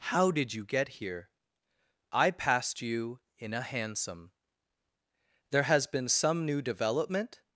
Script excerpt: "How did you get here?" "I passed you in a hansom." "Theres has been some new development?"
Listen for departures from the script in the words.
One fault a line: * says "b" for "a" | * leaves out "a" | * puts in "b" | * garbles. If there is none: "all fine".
* says "There" for "Theres"